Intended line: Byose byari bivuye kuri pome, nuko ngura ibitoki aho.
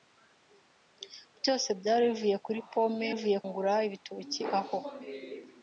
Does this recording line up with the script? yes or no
no